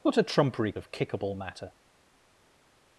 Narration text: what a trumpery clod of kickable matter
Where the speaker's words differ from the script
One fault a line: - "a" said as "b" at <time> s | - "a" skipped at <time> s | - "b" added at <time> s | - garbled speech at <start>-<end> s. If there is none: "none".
- "clod" skipped at 0.8 s